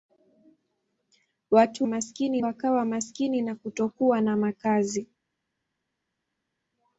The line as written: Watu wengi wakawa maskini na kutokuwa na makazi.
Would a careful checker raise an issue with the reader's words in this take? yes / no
yes